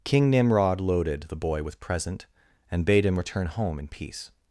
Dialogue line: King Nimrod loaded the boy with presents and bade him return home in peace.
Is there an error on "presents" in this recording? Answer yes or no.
yes